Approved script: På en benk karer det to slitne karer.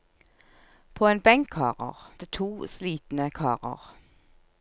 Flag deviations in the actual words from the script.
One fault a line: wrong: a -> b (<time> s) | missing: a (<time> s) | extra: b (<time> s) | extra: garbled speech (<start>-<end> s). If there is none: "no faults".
no faults